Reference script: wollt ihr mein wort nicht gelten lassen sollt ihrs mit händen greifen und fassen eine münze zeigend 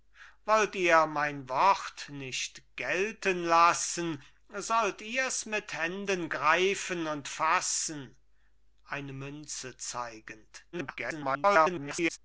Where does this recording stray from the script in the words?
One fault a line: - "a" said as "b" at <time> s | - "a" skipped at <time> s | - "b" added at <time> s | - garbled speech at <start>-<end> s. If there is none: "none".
- garbled speech at 10.7-12.2 s